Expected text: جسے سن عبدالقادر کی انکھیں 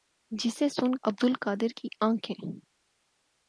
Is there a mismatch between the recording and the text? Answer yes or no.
no